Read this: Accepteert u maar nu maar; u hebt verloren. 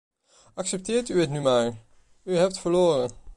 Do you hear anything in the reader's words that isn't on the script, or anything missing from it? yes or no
yes